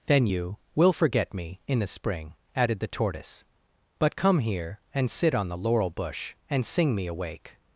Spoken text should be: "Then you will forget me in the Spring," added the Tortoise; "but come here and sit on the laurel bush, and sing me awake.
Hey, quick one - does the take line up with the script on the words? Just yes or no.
yes